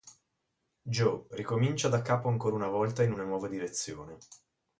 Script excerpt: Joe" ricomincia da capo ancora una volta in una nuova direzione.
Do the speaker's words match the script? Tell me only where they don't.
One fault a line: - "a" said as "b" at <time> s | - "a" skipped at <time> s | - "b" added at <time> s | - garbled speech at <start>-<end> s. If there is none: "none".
none